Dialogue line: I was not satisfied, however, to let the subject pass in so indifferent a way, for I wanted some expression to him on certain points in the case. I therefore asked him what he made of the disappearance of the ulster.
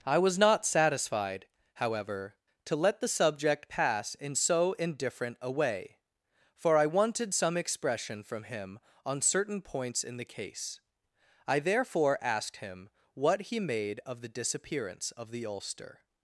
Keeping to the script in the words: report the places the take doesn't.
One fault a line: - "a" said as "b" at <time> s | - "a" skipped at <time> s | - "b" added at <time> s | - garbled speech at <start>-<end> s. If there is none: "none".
- "to" said as "from" at 8.2 s